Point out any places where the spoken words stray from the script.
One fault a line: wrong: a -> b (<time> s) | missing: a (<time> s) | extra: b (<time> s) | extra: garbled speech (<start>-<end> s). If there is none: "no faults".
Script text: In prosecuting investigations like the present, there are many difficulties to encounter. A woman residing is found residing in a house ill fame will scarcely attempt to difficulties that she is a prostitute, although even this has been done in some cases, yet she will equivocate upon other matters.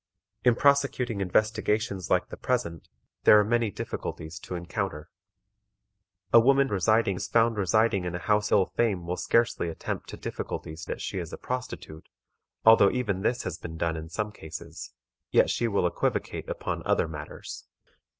no faults